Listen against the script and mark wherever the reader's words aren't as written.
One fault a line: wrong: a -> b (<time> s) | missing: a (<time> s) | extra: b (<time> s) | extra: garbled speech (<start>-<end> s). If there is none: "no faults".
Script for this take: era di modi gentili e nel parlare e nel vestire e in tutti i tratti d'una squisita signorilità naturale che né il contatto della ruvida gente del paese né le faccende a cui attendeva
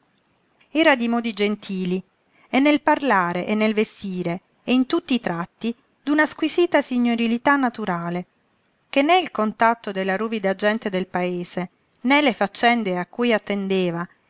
no faults